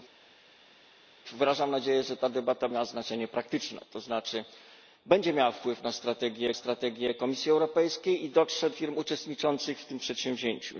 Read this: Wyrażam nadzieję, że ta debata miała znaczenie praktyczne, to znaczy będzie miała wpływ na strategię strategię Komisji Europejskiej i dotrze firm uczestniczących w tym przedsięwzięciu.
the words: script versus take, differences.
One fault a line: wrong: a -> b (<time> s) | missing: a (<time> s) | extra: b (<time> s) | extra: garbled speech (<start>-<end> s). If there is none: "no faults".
no faults